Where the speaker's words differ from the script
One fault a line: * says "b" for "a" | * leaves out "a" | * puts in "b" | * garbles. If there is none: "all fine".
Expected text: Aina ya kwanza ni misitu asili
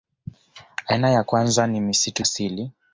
all fine